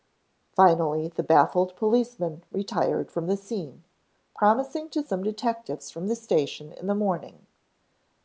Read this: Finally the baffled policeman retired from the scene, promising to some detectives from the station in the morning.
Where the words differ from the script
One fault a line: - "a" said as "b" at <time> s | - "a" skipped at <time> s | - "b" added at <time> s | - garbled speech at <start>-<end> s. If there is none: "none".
none